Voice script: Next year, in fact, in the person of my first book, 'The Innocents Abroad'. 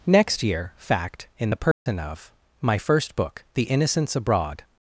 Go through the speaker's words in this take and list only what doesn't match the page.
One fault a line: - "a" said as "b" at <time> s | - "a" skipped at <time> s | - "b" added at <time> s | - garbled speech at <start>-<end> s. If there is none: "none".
- "in" skipped at 0.7 s